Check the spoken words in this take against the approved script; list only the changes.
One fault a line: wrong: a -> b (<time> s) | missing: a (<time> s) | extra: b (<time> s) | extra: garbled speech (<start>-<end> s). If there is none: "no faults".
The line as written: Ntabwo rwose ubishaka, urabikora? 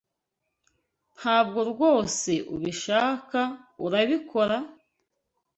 no faults